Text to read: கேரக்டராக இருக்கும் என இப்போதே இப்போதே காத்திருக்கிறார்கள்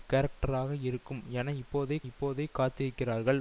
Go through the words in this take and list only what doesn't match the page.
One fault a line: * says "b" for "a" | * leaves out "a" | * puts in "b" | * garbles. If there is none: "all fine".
all fine